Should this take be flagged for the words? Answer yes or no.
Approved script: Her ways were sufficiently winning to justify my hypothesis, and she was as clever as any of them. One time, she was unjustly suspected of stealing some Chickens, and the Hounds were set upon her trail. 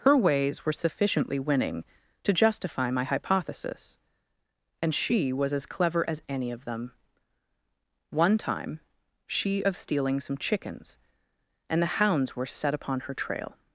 yes